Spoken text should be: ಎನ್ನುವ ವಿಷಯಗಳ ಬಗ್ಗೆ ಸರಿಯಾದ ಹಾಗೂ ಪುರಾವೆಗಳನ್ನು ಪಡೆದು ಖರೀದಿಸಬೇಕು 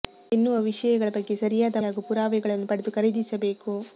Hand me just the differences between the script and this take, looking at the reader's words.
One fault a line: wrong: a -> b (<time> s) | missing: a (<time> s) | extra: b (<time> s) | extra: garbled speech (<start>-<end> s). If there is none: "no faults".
no faults